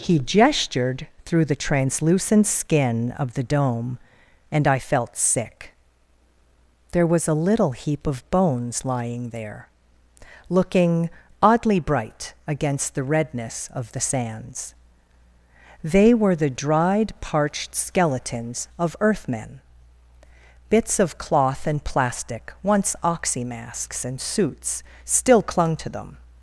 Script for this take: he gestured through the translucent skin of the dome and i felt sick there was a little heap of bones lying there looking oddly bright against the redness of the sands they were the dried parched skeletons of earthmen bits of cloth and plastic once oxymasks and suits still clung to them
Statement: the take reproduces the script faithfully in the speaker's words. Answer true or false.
true